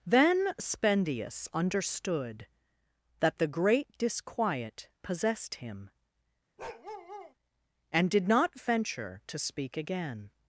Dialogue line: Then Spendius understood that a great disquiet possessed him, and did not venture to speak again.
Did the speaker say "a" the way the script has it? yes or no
no